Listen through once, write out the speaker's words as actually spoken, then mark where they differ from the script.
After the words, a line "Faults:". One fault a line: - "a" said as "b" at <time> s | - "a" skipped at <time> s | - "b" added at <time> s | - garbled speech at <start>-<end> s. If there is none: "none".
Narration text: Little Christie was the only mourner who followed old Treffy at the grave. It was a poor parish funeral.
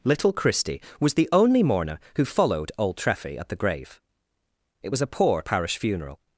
Little Christie was the only mourner who followed old Treffy at the grave. It was a poor parish funeral.
Faults:
none